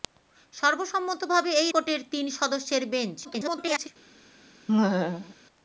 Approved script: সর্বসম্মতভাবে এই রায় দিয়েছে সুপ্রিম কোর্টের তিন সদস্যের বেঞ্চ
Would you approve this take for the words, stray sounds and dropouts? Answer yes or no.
no